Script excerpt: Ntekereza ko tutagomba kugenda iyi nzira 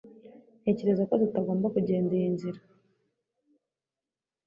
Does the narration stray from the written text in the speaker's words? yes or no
no